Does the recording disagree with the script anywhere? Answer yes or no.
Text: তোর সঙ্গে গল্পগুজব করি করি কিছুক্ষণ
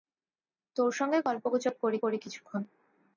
no